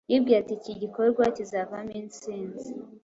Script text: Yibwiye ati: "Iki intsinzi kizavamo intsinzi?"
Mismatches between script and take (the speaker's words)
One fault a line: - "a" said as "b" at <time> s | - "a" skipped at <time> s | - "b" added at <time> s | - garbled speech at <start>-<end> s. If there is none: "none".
- "intsinzi" said as "gikorwa" at 0.8 s